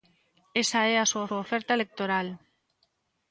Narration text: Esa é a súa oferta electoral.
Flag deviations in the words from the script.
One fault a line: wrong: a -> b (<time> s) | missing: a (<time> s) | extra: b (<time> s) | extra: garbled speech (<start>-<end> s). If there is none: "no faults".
extra: súa (1.3 s)